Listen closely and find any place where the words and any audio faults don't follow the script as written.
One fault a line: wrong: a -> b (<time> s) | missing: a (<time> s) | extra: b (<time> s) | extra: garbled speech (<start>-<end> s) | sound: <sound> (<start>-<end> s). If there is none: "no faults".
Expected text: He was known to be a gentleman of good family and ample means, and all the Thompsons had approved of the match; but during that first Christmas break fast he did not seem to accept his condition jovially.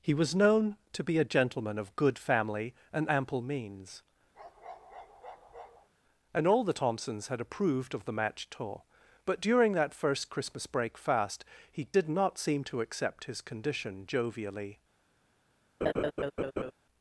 sound: bark (4.3-5.9 s)
extra: tour (8.5 s)
sound: laugh (15.8-16.7 s)